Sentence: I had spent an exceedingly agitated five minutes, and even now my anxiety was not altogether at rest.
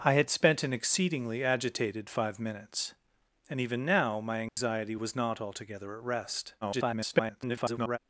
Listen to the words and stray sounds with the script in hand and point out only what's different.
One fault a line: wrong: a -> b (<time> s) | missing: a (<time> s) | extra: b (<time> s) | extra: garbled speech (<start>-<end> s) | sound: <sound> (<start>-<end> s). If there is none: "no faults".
sound: dropout (4.5-4.6 s)
extra: garbled speech (6.6-8.0 s)